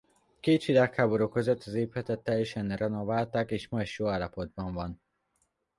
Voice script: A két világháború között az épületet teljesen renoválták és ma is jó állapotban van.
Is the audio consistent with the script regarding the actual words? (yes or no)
yes